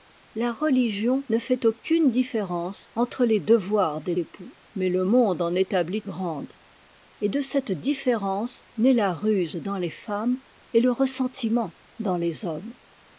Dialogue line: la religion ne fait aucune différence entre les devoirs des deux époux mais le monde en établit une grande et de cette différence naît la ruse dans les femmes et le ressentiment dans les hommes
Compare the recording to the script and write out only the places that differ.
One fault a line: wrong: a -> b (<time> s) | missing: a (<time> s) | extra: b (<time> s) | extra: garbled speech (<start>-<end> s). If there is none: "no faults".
missing: deux (4.2 s)
missing: une (6.0 s)